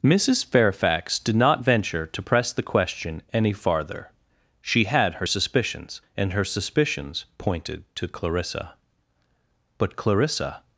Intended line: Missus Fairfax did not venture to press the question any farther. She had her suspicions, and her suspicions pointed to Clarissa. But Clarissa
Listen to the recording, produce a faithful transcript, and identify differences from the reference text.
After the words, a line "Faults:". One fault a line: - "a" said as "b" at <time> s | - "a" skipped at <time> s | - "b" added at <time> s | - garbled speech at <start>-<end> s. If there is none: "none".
Missus Fairfax did not venture to press the question any farther. She had her suspicions, and her suspicions pointed to Clarissa. But Clarissa
Faults:
none